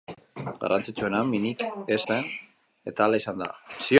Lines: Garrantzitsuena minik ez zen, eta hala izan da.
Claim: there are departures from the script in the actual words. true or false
false